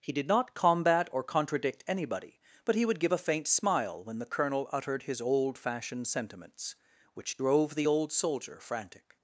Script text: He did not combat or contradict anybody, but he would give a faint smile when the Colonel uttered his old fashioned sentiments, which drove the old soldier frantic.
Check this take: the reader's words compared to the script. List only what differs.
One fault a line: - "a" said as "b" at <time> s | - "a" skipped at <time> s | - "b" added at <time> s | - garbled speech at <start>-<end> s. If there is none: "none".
none